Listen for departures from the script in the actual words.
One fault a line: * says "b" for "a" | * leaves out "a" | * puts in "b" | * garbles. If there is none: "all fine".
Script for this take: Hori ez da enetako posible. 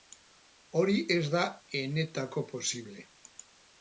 all fine